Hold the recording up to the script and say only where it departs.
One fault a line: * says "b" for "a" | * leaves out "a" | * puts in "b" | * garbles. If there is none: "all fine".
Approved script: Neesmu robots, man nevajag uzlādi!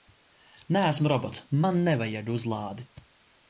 all fine